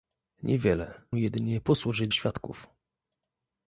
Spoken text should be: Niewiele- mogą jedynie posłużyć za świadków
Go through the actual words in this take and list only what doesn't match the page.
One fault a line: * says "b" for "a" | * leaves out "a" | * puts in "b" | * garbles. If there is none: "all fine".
* leaves out "mogą"
* leaves out "za"